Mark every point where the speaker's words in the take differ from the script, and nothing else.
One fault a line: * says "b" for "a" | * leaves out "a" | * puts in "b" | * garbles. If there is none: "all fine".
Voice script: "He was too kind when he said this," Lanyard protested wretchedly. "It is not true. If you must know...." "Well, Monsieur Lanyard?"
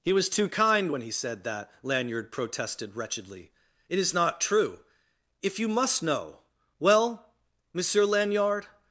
* says "that" for "this"